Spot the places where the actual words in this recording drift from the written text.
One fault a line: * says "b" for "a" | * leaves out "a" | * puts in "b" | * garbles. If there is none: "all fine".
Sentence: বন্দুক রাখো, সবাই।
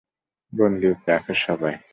all fine